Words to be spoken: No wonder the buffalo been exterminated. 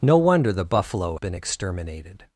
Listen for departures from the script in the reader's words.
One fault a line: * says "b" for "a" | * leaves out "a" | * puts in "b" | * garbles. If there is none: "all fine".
all fine